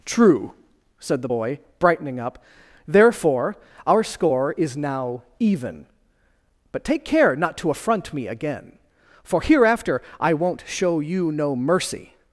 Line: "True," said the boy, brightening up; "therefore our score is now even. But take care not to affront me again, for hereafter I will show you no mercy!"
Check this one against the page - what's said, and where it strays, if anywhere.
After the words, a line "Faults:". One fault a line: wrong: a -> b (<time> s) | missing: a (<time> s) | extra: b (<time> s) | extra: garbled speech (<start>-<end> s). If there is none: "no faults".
"True," said the boy, brightening up; "therefore our score is now even. But take care not to affront me again, for hereafter I won't show you no mercy!"
Faults:
wrong: will -> won't (10.3 s)